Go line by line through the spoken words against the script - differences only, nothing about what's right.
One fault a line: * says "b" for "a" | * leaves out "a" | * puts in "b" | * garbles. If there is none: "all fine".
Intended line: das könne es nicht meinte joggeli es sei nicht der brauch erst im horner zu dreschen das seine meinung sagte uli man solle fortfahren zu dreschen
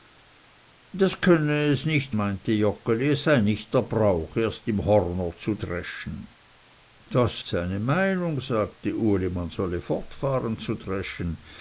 all fine